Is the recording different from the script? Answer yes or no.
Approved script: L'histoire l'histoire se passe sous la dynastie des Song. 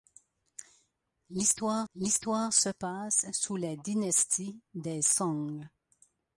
no